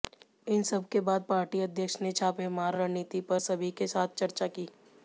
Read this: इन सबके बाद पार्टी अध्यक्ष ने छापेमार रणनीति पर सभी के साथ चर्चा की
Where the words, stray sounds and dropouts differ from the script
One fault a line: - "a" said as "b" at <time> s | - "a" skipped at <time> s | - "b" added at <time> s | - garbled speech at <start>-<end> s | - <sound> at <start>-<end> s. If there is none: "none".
none